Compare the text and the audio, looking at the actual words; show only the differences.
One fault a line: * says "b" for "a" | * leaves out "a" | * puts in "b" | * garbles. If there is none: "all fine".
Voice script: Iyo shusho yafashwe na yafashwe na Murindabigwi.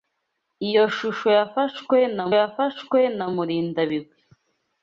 all fine